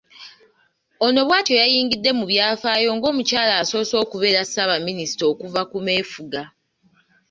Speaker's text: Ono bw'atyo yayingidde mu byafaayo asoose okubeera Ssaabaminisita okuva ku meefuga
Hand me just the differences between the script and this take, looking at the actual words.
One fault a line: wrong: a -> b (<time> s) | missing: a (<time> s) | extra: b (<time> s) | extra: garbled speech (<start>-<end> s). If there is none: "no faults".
extra: ng'omukyala (3.0 s)